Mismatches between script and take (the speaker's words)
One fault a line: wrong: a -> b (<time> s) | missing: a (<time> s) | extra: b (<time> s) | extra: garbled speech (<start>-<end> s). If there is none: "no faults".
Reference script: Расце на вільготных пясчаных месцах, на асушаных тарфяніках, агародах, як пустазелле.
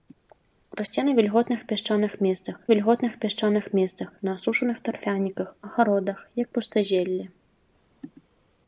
extra: вільготных пясчаных месцах (2.7 s)